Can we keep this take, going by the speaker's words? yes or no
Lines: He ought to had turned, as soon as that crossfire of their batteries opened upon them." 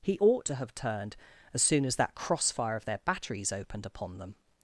no